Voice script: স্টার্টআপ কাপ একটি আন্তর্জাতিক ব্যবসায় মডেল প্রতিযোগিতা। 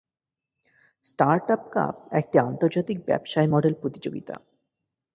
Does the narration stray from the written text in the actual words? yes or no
no